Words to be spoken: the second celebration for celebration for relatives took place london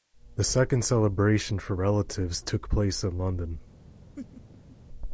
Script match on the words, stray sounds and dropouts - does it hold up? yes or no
no